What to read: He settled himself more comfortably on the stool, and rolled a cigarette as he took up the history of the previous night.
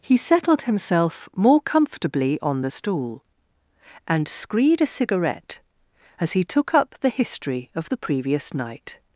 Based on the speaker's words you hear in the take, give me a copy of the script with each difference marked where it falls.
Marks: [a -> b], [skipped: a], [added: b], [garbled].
He settled himself more comfortably on the stool, and [rolled -> screed] a cigarette as he took up the history of the previous night.